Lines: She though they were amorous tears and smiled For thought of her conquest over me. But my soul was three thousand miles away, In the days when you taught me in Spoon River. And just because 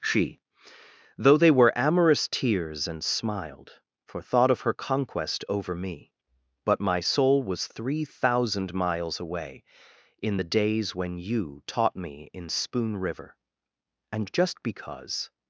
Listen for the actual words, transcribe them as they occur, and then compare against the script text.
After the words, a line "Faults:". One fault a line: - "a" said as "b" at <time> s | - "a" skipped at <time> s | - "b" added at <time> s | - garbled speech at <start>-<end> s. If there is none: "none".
She though they were amorous tears and smiled For thought of her conquest over me. But my soul was three thousand miles away, In the days when you taught me in Spoon River. And just because
Faults:
none